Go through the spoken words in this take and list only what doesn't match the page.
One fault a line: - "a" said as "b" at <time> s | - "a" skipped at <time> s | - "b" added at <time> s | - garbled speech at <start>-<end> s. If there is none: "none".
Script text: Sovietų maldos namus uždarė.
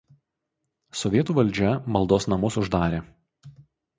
- "valdžia" added at 1.4 s